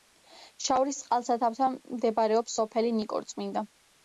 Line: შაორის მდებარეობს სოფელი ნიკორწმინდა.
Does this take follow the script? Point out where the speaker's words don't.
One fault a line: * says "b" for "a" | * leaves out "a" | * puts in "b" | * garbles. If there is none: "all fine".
* puts in "წყალსაცავთან"